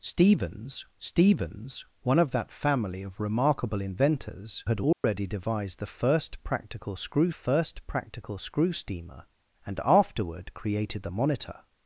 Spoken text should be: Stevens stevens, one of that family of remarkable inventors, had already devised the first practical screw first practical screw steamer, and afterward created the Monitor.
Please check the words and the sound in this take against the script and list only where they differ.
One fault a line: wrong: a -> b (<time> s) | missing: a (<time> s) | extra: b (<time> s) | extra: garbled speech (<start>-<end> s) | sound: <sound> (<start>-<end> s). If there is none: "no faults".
sound: dropout (4.9-5.0 s)